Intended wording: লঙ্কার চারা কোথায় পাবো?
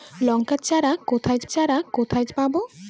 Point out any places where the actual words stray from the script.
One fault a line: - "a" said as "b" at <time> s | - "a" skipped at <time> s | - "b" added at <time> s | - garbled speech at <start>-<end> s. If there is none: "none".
- "চারা কোথায়" added at 1.5 s